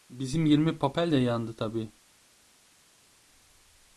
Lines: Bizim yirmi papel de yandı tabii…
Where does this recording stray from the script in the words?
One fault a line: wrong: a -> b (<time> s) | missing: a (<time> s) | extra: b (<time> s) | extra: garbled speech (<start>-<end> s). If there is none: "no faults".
no faults